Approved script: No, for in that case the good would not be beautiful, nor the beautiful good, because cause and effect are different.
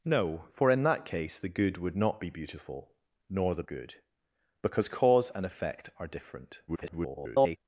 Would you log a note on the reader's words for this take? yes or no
yes